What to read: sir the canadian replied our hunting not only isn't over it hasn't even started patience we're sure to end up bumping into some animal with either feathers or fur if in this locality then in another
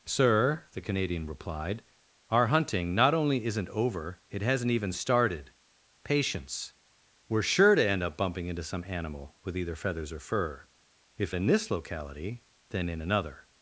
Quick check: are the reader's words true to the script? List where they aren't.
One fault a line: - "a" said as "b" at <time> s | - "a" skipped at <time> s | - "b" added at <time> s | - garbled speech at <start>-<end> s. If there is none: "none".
none